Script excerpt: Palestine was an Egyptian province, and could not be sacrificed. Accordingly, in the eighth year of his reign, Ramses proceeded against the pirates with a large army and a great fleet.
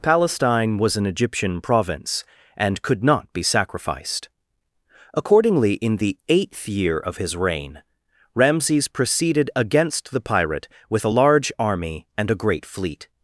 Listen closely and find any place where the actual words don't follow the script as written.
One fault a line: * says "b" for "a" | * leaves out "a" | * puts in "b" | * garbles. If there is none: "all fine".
* says "pirate" for "pirates"